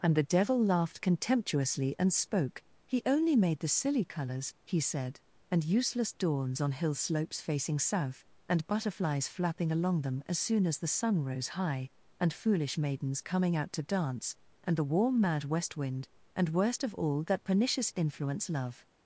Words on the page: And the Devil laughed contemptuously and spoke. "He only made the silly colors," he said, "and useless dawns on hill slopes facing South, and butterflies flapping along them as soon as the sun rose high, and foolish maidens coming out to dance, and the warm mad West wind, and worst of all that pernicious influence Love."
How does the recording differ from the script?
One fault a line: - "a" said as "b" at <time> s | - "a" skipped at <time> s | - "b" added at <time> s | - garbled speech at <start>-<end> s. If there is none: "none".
none